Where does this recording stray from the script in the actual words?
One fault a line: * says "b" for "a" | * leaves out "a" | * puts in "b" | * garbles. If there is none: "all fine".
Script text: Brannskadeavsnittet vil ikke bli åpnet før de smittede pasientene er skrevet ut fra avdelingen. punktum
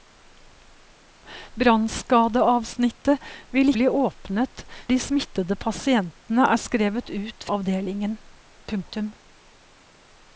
* leaves out "ikke"
* leaves out "før"
* leaves out "fra"